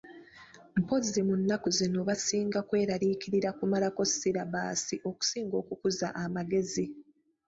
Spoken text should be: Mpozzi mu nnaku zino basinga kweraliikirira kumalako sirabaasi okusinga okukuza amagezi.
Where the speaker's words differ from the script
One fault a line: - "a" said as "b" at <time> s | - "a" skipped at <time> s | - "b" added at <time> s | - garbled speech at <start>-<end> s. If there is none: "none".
none